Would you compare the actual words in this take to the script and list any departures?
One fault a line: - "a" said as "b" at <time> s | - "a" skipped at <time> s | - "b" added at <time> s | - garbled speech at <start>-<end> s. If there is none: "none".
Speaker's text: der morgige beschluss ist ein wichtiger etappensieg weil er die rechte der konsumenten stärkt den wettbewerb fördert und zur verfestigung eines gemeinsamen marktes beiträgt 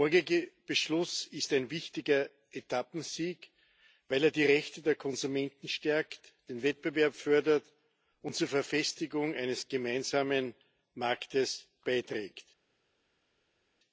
none